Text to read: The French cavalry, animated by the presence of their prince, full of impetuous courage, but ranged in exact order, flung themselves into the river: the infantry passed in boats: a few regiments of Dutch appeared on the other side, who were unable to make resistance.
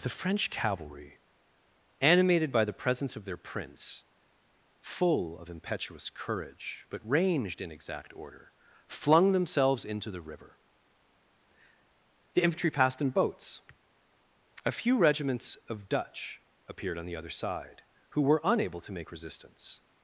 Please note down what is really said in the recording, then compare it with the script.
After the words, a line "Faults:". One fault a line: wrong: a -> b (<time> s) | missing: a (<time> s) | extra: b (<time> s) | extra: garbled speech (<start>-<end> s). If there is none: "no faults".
The French cavalry, animated by the presence of their prince, full of impetuous courage, but ranged in exact order, flung themselves into the river: the infantry passed in boats: a few regiments of Dutch appeared on the other side, who were unable to make resistance.
Faults:
no faults